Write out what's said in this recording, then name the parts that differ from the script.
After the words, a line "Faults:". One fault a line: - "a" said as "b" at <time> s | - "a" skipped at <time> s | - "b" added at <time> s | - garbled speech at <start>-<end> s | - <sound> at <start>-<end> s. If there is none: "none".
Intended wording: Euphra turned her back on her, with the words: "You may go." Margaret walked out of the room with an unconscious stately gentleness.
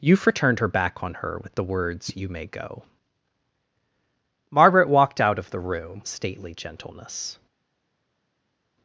Euphra turned her back on her, with the words: "You may go." Margaret walked out of the room stately gentleness.
Faults:
- "with an unconscious" skipped at 6.0 s